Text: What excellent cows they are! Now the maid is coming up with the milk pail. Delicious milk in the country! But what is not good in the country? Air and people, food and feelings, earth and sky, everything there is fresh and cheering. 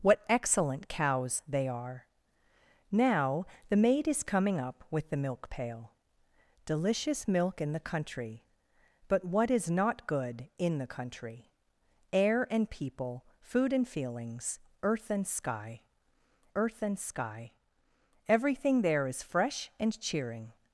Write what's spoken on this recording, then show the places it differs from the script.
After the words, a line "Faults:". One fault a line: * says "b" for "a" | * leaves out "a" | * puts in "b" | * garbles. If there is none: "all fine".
What excellent cows they are! Now the maid is coming up with the milk pail. Delicious milk in the country! But what is not good in the country? Air and people, food and feelings, earth and sky earth and sky, everything there is fresh and cheering.
Faults:
* puts in "earth and sky"